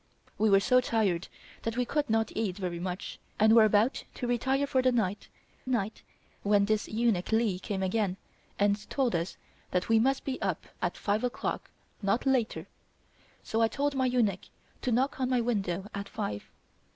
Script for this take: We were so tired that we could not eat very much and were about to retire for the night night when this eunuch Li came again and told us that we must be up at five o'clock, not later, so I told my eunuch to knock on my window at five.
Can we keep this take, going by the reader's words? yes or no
yes